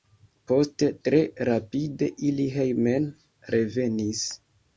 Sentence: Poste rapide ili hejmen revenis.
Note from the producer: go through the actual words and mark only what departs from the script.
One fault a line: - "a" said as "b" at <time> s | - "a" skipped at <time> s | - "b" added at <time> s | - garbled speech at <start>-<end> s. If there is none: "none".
- "tre" added at 1.1 s